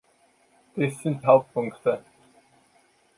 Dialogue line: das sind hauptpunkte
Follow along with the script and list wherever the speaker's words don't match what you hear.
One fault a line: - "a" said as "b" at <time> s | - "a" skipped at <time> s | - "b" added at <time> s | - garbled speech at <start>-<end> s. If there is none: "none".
none